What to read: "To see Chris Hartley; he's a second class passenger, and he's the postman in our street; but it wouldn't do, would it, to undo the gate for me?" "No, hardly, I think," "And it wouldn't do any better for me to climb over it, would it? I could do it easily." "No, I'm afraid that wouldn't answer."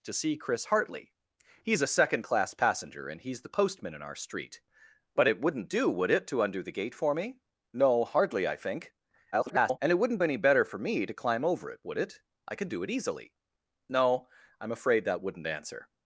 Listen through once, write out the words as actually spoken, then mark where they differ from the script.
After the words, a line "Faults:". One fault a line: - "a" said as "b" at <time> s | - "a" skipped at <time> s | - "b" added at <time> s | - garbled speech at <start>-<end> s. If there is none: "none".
"To see Chris Hartley; he's a second class passenger, and he's the postman in our street; but it wouldn't do, would it, to undo the gate for me?" "No, hardly, I think," [garbled] "And it wouldn't any better for me to climb over it, would it? I could do it easily." "No, I'm afraid that wouldn't answer."
Faults:
- garbled speech at 9.3-9.8 s
- "do" skipped at 10.2 s